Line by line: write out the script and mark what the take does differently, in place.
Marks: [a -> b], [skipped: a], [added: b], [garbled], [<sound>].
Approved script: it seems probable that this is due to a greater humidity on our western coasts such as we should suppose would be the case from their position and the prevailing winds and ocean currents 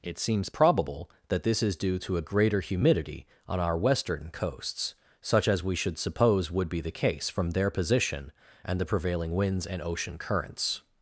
it seems probable that this is due to a greater humidity on our western coasts such as we should suppose would be the case from their position and the prevailing winds and ocean currents